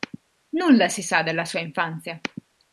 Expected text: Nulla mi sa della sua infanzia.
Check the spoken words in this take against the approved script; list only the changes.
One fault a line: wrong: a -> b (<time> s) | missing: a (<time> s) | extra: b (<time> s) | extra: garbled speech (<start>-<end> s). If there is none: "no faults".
wrong: mi -> si (0.9 s)